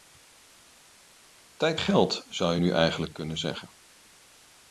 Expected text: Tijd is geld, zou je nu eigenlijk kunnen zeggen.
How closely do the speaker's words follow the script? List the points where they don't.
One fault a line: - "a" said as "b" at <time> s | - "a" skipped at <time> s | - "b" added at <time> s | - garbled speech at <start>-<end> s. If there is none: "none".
- "is" skipped at 1.8 s